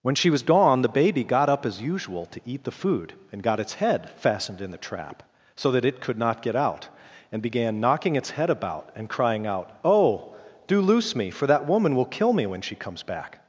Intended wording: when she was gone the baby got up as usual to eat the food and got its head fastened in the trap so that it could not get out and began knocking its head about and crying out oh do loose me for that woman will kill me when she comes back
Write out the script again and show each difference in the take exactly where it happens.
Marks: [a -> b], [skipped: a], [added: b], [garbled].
when she was gone the baby got up as usual to eat the food and got its head fastened in the trap so that it could not get out and began knocking its head about and crying out oh do loose me for that woman will kill me when she comes back